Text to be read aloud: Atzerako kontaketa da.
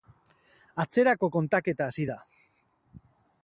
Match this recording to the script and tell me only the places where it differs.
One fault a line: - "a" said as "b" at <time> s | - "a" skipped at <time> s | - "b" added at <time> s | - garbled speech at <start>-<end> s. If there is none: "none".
- "hasi" added at 1.9 s